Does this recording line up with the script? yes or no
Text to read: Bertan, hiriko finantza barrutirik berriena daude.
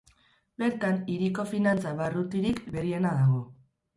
no